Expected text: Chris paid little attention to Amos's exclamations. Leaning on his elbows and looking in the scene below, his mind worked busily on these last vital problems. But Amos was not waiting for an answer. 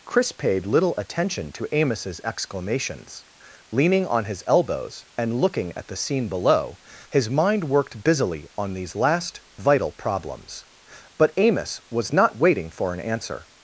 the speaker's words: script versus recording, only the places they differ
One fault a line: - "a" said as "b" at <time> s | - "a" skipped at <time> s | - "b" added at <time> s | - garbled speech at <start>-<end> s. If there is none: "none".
- "in" said as "at" at 5.8 s